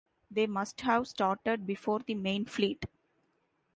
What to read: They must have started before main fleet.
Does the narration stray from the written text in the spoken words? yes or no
yes